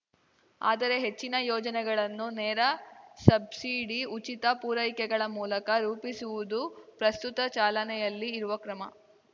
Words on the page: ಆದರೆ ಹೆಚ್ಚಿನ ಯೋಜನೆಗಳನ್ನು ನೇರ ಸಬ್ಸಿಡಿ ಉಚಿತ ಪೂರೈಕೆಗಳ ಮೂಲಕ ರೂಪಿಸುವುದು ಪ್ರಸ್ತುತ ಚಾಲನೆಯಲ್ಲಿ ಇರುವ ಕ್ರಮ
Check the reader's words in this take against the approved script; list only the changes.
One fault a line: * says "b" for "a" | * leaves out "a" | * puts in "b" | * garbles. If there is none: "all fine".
all fine